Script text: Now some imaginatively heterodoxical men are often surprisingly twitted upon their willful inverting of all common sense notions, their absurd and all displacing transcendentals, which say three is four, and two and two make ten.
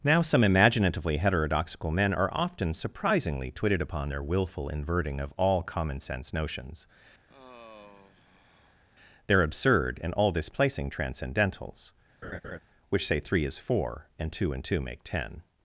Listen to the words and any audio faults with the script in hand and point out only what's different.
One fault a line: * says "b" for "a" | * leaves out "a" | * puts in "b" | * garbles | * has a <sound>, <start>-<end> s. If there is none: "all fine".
* has a sigh, 7.3-8.8 s
* has a laugh, 12.2-12.6 s